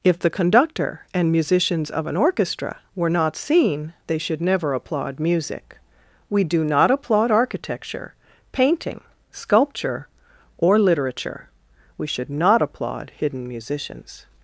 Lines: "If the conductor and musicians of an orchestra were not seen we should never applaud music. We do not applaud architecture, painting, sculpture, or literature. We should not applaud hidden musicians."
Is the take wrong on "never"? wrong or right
right